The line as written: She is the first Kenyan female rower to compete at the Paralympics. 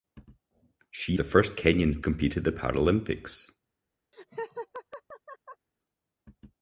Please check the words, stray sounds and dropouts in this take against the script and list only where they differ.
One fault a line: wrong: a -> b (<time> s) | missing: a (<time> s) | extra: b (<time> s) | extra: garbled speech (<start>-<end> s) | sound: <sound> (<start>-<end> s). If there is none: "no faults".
missing: is (1.2 s)
missing: female rower to (2.0 s)
sound: laugh (4.1-5.7 s)